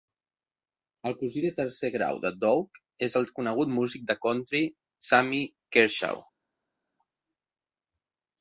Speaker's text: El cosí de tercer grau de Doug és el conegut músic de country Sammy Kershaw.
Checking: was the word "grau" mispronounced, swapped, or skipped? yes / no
no